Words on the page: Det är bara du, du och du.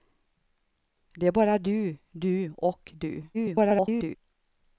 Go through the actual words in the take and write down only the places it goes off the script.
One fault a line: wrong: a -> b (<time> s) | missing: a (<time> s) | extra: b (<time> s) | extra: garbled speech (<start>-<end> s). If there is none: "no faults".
extra: garbled speech (3.3-4.2 s)